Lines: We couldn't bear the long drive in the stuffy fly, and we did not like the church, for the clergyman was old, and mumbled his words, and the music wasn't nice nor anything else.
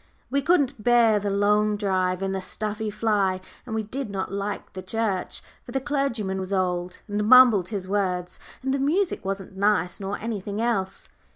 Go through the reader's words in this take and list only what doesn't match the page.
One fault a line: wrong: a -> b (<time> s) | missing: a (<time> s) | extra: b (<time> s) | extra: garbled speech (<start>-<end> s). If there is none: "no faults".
no faults